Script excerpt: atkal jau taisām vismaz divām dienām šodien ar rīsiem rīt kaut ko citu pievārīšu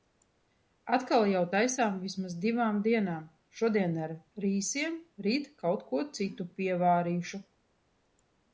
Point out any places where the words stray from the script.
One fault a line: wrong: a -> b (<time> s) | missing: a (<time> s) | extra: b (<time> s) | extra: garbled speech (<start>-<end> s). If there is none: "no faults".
no faults